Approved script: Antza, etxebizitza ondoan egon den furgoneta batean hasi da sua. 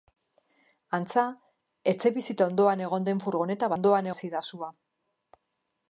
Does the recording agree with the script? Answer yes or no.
no